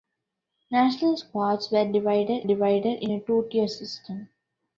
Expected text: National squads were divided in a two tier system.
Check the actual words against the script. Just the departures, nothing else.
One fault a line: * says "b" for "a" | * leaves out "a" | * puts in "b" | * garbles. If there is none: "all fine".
* puts in "divided"